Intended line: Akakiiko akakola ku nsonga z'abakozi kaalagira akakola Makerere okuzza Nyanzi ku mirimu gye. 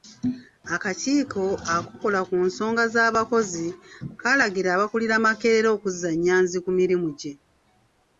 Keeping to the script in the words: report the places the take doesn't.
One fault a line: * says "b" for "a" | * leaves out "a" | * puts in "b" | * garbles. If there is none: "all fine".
* says "abakulira" for "akakola"